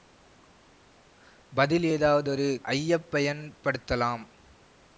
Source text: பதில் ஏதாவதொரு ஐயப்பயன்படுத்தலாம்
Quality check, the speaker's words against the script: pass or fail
pass